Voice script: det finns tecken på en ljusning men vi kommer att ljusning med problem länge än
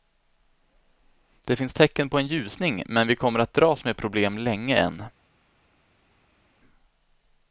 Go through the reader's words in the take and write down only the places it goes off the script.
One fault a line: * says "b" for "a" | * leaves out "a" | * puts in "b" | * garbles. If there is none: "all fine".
* says "dras" for "ljusning"